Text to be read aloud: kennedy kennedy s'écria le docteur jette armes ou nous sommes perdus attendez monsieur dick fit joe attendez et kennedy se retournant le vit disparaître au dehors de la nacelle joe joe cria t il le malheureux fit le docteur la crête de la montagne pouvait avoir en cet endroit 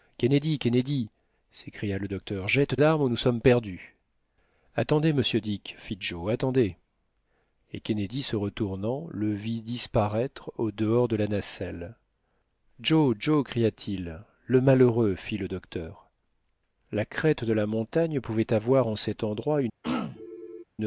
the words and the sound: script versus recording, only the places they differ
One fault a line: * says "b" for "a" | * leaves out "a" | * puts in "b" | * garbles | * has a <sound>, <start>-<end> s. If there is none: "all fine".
* has a throat clearing, 19.8-20.6 s